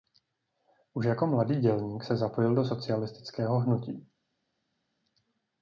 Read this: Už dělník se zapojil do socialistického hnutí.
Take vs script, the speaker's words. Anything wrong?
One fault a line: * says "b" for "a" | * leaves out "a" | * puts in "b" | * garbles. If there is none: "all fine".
* puts in "jako mladý"